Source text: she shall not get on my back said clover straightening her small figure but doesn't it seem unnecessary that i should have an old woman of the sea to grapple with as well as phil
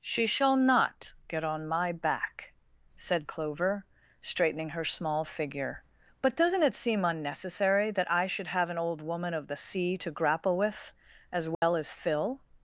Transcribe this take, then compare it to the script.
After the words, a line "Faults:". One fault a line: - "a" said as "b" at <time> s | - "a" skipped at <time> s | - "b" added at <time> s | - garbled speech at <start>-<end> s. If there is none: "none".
she shall not get on my back said clover straightening her small figure but doesn't it seem unnecessary that i should have an old woman of the sea to grapple with as well as phil
Faults:
none